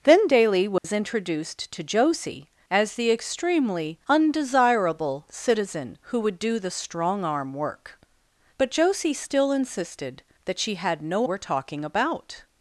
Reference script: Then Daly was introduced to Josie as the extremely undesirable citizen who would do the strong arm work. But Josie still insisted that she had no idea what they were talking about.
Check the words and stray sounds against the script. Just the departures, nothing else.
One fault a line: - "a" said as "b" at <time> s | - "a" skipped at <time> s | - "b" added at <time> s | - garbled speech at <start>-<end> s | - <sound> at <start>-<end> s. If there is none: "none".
- dropout at 0.8-0.8 s
- "idea what they" skipped at 11.3 s